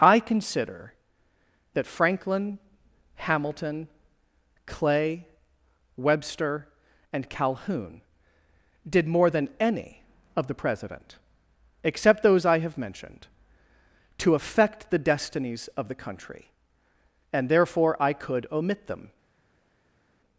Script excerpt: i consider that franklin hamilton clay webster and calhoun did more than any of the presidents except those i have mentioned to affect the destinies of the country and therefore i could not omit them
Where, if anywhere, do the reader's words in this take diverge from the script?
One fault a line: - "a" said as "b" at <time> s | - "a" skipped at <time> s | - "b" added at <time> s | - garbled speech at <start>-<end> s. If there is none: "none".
- "presidents" said as "president" at 10.6 s
- "not" skipped at 18.5 s